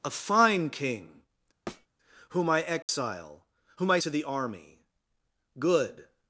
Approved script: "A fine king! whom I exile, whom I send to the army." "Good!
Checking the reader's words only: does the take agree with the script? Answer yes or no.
no